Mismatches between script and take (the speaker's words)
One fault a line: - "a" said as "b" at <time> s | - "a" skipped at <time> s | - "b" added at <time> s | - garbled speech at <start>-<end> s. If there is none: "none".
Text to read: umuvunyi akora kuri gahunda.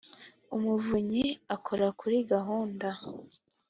none